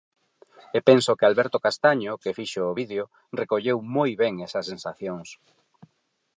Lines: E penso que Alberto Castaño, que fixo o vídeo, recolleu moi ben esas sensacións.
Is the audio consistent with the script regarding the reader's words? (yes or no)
yes